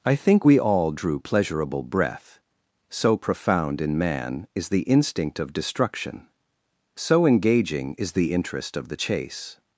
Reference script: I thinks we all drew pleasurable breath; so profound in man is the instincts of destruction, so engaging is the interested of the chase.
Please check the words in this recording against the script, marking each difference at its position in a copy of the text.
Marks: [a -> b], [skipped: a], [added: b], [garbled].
I [thinks -> think] we all drew pleasurable breath; so profound in man is the [instincts -> instinct] of destruction, so engaging is the [interested -> interest] of the chase.